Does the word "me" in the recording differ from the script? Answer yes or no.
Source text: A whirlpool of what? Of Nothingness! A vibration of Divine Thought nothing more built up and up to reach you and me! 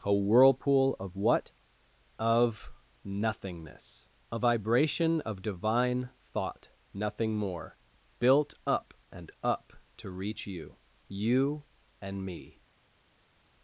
no